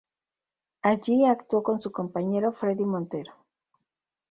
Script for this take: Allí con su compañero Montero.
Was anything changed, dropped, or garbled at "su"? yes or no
no